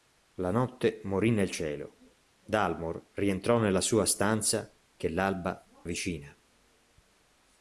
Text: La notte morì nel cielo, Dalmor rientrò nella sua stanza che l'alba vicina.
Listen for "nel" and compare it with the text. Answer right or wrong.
right